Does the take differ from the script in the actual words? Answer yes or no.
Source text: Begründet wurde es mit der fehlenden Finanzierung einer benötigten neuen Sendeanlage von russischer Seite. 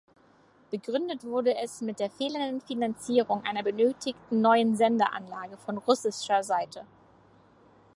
no